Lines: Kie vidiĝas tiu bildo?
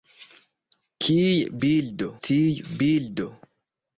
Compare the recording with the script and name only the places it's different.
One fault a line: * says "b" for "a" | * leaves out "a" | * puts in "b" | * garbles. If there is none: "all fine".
* says "bildo" for "vidiĝas"